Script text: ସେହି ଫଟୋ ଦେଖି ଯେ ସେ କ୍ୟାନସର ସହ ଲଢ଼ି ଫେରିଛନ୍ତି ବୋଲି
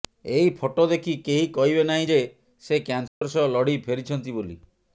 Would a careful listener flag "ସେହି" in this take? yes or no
yes